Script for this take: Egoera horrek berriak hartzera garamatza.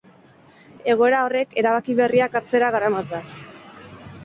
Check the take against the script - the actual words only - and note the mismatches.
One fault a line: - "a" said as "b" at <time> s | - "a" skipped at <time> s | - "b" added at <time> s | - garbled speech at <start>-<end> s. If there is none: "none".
- "erabaki" added at 1.6 s